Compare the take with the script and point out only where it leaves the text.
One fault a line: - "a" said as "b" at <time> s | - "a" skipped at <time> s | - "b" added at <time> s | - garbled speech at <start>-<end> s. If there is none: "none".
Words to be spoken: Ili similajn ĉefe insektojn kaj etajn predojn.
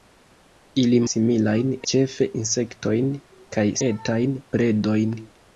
none